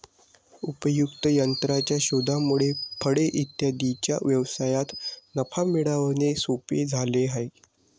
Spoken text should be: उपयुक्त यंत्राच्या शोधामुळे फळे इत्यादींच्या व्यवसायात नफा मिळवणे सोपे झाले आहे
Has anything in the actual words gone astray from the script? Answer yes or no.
no